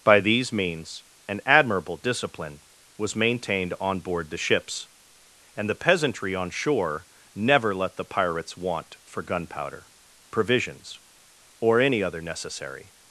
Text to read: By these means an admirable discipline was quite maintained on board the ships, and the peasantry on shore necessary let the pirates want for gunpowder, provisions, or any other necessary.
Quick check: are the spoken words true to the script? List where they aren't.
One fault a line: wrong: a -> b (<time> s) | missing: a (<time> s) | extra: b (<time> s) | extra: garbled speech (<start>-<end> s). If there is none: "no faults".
missing: quite (3.1 s)
wrong: necessary -> never (7.3 s)